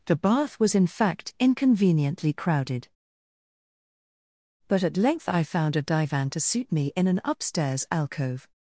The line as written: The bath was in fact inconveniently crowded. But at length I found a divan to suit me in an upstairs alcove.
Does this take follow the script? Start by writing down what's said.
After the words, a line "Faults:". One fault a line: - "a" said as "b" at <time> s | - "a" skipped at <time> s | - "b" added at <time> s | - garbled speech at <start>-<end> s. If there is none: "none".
The bath was in fact inconveniently crowded. But at length I found a divan to suit me in an upstairs alcove.
Faults:
none